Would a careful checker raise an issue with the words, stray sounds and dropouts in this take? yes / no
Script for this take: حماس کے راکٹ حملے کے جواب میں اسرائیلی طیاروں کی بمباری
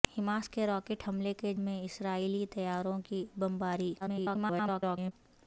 yes